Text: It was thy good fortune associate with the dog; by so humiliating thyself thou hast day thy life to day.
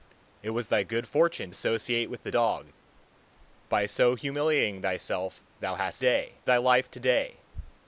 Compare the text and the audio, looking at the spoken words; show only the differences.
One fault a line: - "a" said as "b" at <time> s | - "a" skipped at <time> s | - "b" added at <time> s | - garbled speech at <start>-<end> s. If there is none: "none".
none